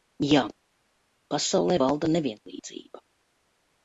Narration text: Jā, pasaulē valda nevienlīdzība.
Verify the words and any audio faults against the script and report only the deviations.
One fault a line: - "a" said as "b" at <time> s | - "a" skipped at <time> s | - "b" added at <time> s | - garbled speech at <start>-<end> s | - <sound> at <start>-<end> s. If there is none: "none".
none